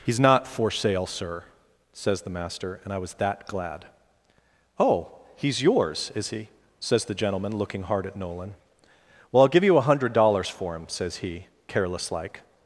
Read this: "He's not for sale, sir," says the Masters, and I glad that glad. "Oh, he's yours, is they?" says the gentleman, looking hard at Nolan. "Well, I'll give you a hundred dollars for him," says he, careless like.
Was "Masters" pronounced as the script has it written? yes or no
no